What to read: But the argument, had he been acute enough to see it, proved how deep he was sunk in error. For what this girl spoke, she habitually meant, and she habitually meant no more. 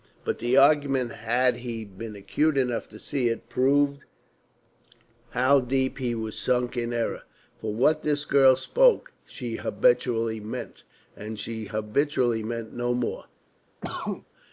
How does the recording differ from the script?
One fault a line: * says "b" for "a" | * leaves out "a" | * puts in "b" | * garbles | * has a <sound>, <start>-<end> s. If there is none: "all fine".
* has a cough, 13.8-14.3 s